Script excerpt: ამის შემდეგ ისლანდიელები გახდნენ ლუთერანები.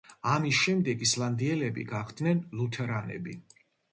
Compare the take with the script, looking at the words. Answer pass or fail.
pass